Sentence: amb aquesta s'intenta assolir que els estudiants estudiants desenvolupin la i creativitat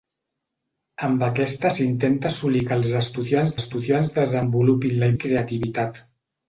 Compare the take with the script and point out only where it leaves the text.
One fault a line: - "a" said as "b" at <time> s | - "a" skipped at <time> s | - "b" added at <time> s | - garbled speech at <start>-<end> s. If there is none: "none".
none